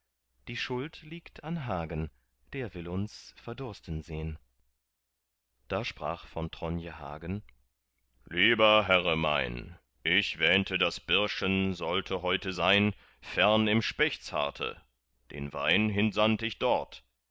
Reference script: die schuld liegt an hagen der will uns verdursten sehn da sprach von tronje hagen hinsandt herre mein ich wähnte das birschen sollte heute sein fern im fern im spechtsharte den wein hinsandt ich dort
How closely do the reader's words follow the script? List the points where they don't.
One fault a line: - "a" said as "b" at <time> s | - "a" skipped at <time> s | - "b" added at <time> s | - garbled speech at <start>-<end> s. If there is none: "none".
- "hinsandt" said as "lieber" at 8.2 s
- "fern im" skipped at 13.8 s